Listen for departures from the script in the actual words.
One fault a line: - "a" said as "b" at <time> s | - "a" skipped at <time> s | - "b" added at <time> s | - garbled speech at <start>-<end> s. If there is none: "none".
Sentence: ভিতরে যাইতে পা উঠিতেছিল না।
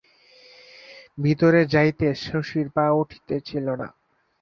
- "শশীর" added at 2.2 s